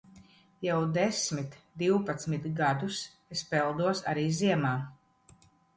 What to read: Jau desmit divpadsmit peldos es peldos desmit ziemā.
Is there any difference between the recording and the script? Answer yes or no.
yes